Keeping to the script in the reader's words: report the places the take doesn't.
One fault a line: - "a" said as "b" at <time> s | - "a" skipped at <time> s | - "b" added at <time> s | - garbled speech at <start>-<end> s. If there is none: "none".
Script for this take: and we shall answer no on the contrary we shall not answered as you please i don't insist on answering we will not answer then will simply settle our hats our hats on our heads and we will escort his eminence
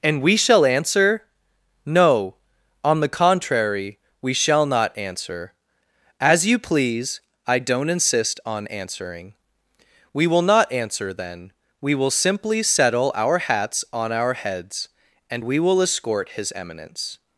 - "answered" said as "answer" at 5.0 s
- "we" added at 11.8 s
- "our hats" skipped at 13.8 s